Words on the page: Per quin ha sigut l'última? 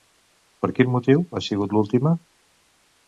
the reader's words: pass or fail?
fail